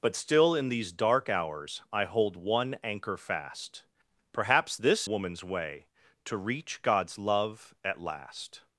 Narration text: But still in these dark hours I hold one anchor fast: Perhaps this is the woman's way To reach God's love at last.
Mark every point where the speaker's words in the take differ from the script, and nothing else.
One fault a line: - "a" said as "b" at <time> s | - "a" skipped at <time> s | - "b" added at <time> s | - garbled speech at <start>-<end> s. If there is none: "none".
- "is the" skipped at 5.1 s